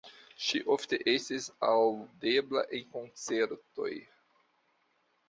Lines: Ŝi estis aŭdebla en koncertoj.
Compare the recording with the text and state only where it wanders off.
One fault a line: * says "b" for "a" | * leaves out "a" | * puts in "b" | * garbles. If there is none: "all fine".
* puts in "ofte"